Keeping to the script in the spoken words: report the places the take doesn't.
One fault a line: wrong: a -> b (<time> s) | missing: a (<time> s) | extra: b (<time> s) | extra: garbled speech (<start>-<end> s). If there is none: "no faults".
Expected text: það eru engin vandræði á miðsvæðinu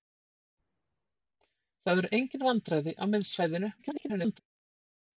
extra: garbled speech (3.8-4.4 s)